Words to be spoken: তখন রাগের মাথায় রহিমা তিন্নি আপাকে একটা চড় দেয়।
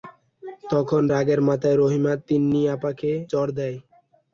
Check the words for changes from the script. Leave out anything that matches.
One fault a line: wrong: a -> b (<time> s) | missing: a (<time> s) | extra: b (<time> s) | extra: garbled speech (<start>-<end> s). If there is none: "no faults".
missing: একটা (3.1 s)